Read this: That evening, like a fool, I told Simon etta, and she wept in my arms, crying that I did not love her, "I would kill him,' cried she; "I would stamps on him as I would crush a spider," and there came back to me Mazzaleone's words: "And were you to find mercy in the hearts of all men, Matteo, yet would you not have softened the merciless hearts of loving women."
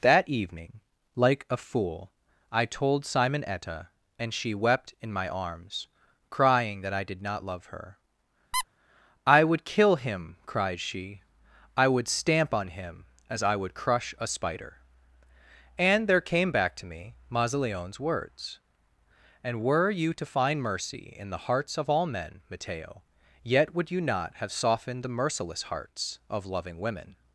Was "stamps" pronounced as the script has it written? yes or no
no